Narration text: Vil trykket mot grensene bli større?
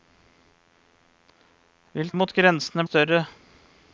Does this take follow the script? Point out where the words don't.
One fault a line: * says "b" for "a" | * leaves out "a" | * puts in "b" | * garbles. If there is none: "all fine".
* leaves out "trykket"
* leaves out "bli"